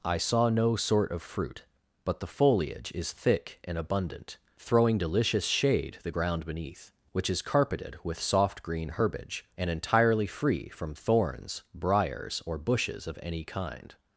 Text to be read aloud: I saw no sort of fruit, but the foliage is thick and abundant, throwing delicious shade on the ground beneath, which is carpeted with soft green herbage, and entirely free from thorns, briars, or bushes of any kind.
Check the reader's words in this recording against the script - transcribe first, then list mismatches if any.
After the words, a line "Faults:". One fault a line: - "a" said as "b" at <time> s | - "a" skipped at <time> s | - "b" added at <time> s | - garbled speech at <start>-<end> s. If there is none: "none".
I saw no sort of fruit, but the foliage is thick and abundant, throwing delicious shade the ground beneath, which is carpeted with soft green herbage, and entirely free from thorns, briars, or bushes of any kind.
Faults:
- "on" skipped at 6.0 s